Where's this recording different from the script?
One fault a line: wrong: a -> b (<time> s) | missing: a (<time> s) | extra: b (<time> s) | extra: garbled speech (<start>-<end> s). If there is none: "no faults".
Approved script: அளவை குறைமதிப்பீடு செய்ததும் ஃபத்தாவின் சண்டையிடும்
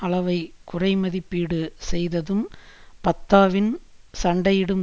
no faults